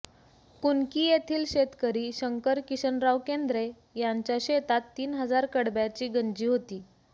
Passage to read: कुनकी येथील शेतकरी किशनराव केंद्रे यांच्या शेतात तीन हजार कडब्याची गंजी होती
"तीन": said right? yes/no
yes